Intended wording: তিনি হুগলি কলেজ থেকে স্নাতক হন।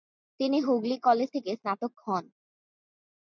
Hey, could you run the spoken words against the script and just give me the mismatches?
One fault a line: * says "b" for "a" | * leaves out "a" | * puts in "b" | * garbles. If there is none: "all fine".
all fine